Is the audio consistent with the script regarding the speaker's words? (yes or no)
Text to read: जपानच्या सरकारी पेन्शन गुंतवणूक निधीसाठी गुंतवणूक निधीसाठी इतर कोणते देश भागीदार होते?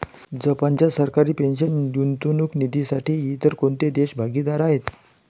no